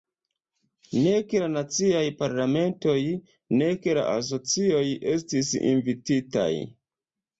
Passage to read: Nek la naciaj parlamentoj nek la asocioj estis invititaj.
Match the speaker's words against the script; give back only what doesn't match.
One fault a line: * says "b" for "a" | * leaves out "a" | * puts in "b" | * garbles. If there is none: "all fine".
all fine